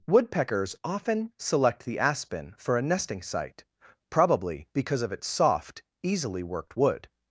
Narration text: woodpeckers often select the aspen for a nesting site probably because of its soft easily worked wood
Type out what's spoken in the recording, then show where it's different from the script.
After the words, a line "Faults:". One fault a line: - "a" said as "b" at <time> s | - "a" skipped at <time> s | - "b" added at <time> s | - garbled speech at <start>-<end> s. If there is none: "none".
woodpeckers often select the aspen for a nesting site probably because of its soft easily worked wood
Faults:
none